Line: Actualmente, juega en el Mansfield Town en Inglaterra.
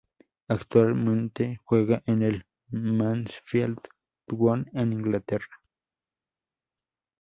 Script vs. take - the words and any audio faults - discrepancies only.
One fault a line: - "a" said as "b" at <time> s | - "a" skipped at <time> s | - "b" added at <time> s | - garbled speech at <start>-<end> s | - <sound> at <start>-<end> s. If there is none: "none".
none